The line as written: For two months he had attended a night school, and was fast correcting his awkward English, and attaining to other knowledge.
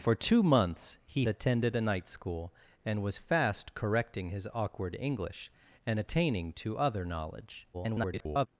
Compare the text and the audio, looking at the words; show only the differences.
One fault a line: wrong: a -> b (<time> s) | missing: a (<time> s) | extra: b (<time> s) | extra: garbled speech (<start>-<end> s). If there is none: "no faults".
missing: had (1.3 s)
extra: garbled speech (7.7-8.5 s)